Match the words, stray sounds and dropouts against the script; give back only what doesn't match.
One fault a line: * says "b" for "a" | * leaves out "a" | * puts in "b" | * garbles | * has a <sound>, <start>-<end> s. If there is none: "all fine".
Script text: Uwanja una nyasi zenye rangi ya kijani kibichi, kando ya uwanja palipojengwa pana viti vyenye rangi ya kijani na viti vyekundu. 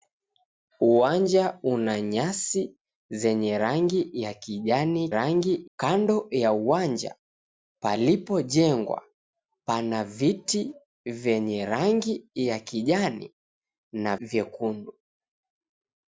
* says "rangi" for "kibichi"
* leaves out "viti"